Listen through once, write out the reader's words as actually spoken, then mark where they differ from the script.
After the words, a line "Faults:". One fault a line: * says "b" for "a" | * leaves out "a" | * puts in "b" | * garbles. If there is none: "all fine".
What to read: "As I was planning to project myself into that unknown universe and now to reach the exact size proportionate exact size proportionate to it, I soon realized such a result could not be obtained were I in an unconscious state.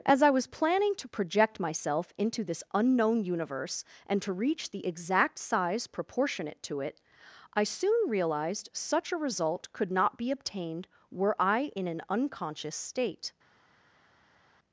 "As I was planning to project myself into this unknown universe and to reach the exact size proportionate to it, I soon realized such a result could not be obtained were I in an unconscious state.
Faults:
* says "this" for "that"
* leaves out "now"
* leaves out "exact size proportionate"